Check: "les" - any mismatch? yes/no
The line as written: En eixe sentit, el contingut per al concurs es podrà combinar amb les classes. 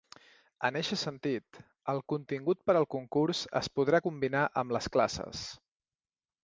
no